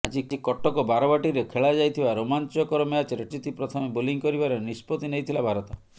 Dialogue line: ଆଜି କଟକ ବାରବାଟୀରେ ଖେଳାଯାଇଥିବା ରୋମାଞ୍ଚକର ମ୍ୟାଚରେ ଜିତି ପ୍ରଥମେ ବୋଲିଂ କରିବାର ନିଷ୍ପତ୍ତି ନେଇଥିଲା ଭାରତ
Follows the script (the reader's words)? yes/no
yes